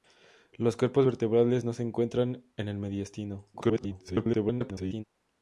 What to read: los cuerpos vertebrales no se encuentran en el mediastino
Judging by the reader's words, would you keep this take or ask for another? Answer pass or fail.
fail